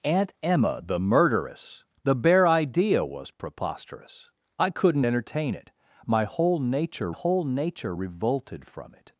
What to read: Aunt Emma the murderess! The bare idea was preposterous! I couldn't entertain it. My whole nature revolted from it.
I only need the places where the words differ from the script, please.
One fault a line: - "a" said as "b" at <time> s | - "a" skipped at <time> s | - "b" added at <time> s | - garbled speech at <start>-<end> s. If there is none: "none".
- "whole nature" added at 7.1 s